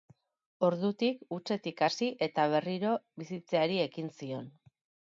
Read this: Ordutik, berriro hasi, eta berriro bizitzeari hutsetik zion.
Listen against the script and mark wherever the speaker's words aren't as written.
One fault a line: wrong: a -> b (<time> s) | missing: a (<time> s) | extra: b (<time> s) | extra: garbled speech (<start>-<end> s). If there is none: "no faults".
wrong: berriro -> hutsetik (1.4 s)
wrong: hutsetik -> ekin (3.9 s)